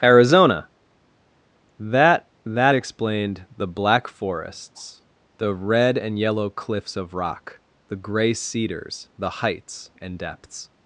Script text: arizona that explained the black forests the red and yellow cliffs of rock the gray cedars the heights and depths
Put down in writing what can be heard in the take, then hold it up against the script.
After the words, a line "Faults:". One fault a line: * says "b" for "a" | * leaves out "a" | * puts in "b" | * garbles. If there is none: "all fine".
arizona that that explained the black forests the red and yellow cliffs of rock the gray cedars the heights and depths
Faults:
* puts in "that"